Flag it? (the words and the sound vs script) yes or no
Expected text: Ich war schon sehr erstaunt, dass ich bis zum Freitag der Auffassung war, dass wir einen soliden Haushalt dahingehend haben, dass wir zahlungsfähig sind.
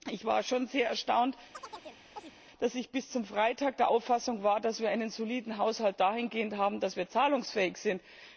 yes